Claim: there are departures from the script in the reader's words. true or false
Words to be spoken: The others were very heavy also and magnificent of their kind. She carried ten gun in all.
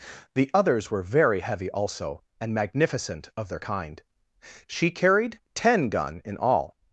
false